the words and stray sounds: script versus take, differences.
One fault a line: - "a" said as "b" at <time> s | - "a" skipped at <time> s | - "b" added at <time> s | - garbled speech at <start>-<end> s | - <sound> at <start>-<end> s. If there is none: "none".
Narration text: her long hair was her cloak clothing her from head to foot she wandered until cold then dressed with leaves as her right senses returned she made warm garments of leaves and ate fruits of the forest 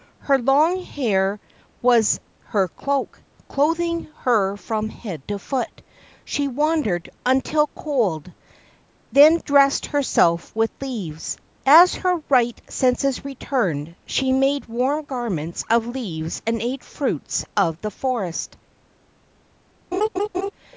- "herself" added at 9.9 s
- laugh at 19.9-20.5 s